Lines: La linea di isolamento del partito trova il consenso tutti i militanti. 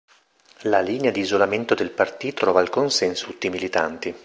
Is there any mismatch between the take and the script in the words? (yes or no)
no